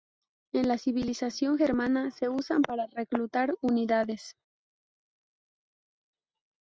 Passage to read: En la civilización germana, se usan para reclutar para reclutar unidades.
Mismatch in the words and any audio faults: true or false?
true